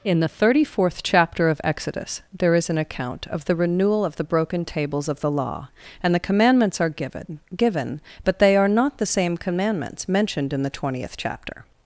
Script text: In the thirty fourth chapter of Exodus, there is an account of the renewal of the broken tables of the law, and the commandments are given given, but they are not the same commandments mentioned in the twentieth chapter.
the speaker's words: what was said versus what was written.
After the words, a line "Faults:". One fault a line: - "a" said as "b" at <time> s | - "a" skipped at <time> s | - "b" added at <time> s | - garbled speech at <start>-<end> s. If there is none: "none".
In the thirty fourth chapter of Exodus, there is an account of the renewal of the broken tables of the law, and the commandments are given given, but they are not the same commandments mentioned in the twentieth chapter.
Faults:
none